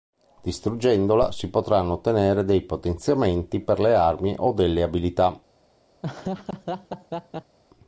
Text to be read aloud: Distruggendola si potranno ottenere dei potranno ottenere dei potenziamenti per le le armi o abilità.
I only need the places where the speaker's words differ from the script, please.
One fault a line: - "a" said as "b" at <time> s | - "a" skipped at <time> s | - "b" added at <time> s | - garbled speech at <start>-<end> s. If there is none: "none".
- "potranno ottenere dei" skipped at 2.6 s
- "le" skipped at 4.0 s
- "delle" added at 4.5 s